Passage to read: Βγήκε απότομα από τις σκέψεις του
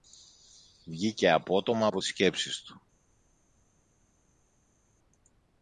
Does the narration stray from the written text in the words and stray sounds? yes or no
no